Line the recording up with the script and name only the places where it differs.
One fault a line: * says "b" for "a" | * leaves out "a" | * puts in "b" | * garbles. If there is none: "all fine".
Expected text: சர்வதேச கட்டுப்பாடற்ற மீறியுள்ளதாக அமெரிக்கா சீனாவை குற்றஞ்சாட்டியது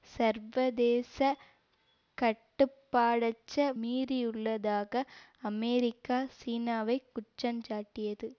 all fine